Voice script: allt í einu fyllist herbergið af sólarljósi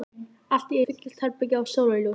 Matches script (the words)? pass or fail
fail